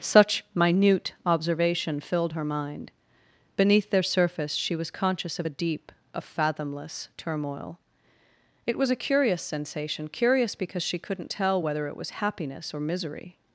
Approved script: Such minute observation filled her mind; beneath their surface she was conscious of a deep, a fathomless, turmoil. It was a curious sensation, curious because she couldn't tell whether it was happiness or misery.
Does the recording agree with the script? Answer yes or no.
yes